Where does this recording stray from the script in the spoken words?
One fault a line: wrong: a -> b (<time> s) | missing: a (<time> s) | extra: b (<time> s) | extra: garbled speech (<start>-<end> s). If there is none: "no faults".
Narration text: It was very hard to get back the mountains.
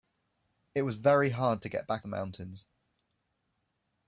no faults